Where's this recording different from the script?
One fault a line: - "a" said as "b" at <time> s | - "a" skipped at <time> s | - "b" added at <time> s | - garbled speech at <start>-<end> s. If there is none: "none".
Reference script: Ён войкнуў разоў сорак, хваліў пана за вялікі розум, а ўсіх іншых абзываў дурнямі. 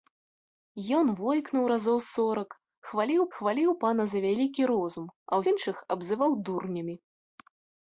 - "хваліў" added at 3.4 s
- "ўсіх" skipped at 5.4 s